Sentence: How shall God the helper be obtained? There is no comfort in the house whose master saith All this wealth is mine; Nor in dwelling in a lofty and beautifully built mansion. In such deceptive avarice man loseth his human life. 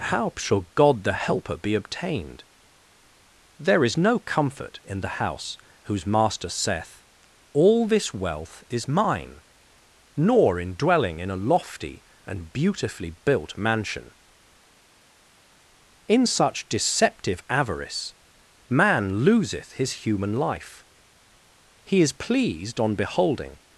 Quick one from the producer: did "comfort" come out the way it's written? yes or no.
yes